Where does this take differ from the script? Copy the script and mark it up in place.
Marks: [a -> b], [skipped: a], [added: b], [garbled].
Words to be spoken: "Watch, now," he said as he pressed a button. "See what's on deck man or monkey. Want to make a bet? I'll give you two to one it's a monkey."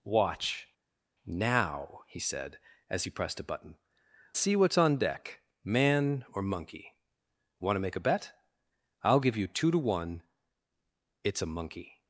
"Watch, now," he said as he pressed a button. "See what's on deck man or monkey. Want to make a bet? I'll give you two to one it's a monkey."